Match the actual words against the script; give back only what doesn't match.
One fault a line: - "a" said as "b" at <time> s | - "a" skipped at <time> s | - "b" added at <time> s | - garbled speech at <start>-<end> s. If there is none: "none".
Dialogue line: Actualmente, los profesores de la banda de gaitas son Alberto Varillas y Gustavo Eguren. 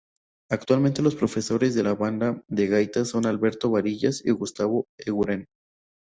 none